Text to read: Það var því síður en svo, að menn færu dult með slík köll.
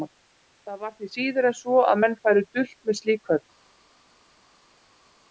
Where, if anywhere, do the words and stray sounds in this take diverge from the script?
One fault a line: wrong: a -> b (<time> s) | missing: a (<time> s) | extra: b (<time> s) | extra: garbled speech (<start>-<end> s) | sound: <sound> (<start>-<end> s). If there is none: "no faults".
no faults